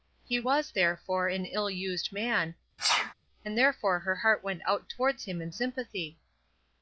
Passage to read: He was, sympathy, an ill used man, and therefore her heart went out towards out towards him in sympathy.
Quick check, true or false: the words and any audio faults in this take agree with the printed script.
false